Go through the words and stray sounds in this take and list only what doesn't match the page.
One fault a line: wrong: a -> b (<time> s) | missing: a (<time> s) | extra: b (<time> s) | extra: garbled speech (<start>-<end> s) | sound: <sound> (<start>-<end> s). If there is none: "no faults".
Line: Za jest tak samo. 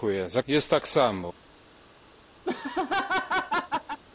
sound: laugh (2.4-4.0 s)